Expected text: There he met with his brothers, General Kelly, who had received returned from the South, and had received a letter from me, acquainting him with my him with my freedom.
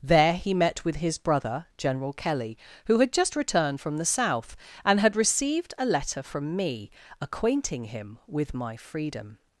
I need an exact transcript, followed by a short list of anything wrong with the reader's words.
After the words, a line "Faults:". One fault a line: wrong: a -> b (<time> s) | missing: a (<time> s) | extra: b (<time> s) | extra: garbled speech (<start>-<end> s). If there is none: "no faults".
There he met with his brother, General Kelly, who had just returned from the South, and had received a letter from me, acquainting him with my freedom.
Faults:
wrong: brothers -> brother (1.2 s)
wrong: received -> just (3.1 s)
missing: him with my (8.8 s)